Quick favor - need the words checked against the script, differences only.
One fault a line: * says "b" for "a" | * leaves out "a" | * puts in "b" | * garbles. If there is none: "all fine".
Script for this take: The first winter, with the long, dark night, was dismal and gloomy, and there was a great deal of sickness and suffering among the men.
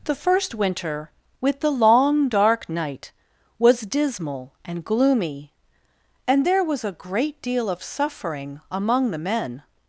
* leaves out "sickness and"